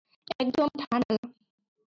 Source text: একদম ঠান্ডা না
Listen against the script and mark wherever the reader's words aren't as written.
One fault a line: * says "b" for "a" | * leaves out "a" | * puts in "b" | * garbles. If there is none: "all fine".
all fine